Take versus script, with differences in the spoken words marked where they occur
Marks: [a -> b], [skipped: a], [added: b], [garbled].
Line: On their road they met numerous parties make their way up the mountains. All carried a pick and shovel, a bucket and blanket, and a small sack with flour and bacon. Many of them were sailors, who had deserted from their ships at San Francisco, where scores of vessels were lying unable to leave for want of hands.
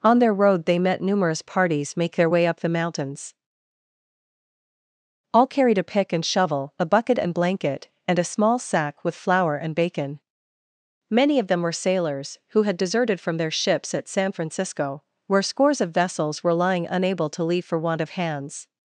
On their road they met numerous parties make their way up the mountains. All carried a pick and shovel, a bucket and blanket, and a small sack with flour and bacon. Many of them were sailors, who had deserted from their ships at San Francisco, where scores of vessels were lying unable to leave for want of hands.